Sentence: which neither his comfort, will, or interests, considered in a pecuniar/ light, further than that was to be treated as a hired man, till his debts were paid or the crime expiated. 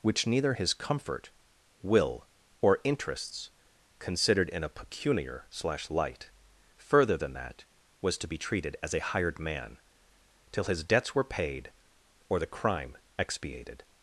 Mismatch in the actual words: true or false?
true